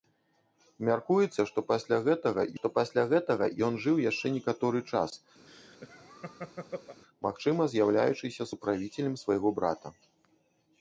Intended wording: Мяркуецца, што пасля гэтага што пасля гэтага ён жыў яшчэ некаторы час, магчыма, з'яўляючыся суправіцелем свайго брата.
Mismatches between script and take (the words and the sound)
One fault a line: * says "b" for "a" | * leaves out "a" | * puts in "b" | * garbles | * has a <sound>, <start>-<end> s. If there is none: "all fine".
* has a laugh, 5.5-7.0 s